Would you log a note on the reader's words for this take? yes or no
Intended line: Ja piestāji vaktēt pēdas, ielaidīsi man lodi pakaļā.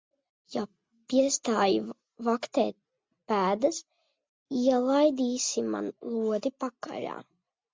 no